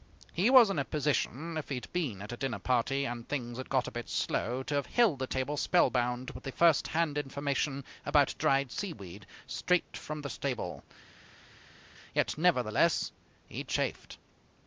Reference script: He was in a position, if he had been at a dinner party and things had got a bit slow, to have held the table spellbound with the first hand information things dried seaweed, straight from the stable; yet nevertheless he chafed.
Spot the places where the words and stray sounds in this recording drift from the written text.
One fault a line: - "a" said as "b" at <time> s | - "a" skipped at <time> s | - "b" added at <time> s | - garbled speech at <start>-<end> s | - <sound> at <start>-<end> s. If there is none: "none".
- "things" said as "about" at 8.0 s